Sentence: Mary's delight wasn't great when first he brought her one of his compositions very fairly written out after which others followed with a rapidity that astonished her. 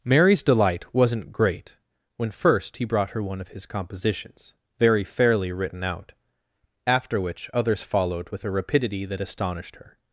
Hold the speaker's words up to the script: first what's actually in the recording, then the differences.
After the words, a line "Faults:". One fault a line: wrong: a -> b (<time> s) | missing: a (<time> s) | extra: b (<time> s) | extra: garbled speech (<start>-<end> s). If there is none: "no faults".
Mary's delight wasn't great when first he brought her one of his compositions very fairly written out after which others followed with a rapidity that astonished her.
Faults:
no faults